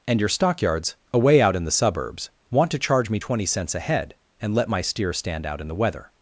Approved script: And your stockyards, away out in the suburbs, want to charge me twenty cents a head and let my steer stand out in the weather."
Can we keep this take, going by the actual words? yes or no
yes